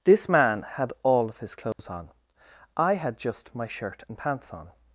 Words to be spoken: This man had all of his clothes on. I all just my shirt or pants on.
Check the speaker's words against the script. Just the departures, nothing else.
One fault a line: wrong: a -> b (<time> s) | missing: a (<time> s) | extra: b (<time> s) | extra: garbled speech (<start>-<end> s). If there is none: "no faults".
wrong: all -> had (2.9 s)
wrong: or -> and (4.1 s)